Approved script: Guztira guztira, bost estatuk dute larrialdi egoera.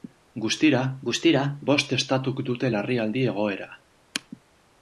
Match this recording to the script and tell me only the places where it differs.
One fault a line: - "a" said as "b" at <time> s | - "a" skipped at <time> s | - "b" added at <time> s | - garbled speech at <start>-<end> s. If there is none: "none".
none